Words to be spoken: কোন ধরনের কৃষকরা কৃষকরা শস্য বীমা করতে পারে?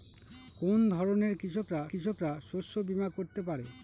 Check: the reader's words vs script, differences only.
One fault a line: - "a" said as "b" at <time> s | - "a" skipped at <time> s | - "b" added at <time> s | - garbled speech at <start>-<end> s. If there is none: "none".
none